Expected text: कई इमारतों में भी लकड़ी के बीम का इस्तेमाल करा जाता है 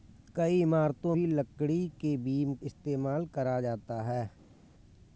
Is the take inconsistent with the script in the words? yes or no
yes